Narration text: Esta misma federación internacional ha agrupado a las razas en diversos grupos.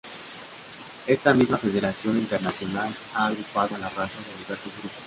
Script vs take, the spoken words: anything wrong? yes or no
no